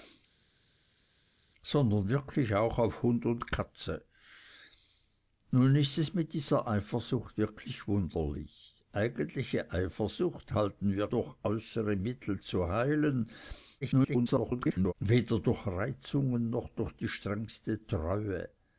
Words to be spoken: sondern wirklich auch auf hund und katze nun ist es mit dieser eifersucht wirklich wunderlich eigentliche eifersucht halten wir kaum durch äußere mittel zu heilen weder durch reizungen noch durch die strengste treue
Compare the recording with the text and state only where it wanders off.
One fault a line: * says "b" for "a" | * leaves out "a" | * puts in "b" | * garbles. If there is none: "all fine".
* leaves out "kaum"
* garbles